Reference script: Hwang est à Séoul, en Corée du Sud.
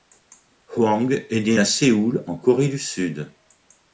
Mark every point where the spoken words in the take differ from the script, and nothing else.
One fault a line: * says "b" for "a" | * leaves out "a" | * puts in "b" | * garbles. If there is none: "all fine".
* puts in "né"